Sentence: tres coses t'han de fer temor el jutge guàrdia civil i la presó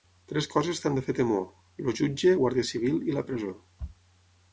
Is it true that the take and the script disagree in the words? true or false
false